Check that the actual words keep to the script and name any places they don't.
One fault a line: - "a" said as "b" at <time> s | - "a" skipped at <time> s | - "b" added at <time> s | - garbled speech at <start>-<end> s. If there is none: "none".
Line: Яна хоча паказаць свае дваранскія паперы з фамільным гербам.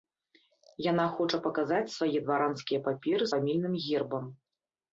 - "з" skipped at 3.2 s